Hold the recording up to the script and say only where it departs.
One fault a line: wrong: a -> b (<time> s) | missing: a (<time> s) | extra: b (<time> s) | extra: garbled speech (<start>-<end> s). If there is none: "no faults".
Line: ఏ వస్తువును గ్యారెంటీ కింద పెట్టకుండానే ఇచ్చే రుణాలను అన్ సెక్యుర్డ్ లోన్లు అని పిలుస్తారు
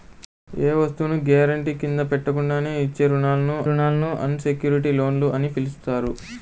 extra: రుణాలను (3.7 s)